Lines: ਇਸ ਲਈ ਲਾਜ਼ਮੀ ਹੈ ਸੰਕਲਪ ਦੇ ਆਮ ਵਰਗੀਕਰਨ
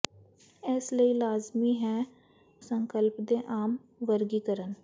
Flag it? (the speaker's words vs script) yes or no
no